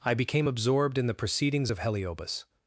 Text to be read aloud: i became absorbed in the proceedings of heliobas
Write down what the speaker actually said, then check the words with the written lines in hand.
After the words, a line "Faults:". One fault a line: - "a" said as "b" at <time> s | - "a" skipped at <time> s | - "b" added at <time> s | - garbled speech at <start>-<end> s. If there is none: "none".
i became absorbed in the proceedings of heliobas
Faults:
none